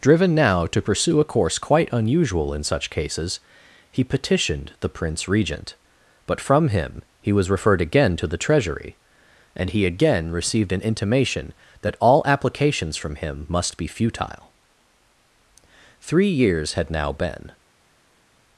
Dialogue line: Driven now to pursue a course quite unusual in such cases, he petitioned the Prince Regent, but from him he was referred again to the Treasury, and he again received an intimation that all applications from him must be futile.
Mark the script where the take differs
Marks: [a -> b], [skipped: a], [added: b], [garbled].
Driven now to pursue a course quite unusual in such cases, he petitioned the Prince Regent, but from him he was referred again to the Treasury, and he again received an intimation that all applications from him must be futile. [added: Three years had now been]